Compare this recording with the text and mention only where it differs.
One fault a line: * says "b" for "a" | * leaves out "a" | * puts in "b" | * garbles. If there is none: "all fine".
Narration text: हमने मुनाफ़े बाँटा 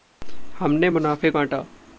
all fine